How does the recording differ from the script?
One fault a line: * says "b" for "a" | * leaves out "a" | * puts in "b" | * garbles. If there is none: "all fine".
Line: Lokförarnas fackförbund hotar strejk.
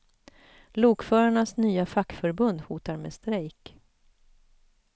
* puts in "nya"
* puts in "med"